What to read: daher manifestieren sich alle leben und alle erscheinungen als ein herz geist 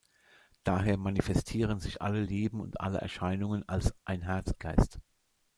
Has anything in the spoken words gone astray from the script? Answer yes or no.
no